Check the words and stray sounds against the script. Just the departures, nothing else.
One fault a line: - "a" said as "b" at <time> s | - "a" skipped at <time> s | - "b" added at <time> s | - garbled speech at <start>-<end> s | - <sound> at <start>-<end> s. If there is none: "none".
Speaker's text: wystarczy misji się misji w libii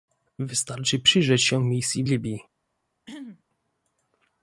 - "misji" said as "przyjrzeć" at 1.0 s
- throat clearing at 3.1-3.4 s